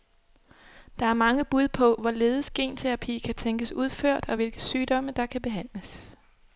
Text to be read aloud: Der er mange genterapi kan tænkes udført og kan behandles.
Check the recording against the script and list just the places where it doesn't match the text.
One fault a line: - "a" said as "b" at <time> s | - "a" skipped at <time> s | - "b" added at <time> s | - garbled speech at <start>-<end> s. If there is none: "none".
- "bud på hvorledes" added at 1.4 s
- "hvilke sygdomme der" added at 4.4 s